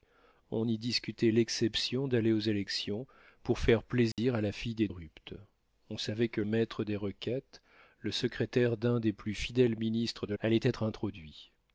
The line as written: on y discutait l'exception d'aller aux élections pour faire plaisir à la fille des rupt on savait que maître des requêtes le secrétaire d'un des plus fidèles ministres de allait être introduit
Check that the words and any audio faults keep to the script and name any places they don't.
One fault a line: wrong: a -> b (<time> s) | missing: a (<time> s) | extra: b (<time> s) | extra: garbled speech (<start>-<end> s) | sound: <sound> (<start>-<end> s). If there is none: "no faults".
sound: dropout (4.1-4.2 s)